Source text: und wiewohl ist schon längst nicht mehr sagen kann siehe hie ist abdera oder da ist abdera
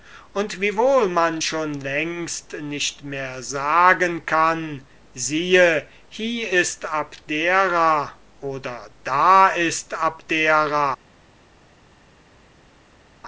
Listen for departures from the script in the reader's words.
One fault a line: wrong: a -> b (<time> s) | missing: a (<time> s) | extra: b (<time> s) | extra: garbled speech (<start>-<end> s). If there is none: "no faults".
wrong: ist -> man (1.1 s)